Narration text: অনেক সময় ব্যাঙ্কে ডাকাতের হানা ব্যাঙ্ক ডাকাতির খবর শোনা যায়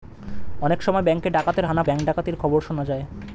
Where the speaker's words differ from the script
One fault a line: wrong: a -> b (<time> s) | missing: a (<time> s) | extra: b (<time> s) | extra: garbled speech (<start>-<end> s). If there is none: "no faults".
no faults